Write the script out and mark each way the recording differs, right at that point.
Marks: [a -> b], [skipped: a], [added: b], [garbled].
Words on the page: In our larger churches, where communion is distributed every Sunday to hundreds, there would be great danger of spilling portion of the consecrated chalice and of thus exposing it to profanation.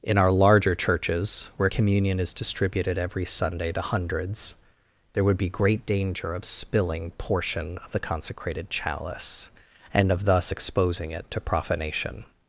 In our larger churches, where communion is distributed every Sunday to hundreds, there would be great danger of spilling portion of the consecrated chalice and of thus exposing it to profanation.